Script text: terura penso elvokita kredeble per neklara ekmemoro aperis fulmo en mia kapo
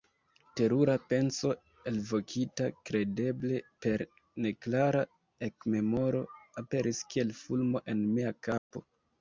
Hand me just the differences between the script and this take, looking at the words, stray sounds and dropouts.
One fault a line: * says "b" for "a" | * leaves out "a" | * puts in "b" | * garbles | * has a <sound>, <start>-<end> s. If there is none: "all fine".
* puts in "kiel"
* has a dropout, 8.6-8.7 s